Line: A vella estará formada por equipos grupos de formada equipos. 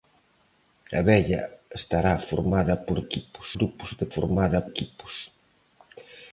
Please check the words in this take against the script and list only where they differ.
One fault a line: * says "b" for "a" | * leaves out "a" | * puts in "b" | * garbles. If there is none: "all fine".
all fine